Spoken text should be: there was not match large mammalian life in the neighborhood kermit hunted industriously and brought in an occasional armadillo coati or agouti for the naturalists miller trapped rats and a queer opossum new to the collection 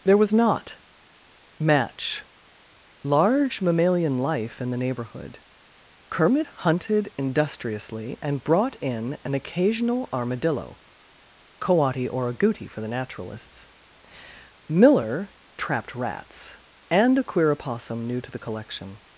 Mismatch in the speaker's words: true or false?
false